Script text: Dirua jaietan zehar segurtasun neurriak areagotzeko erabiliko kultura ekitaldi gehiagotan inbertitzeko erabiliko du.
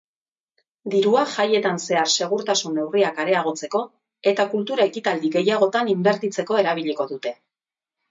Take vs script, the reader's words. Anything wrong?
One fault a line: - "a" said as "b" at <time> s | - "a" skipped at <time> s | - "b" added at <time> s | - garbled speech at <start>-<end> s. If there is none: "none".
- "erabiliko" said as "eta" at 4.3 s
- "du" said as "dute" at 7.1 s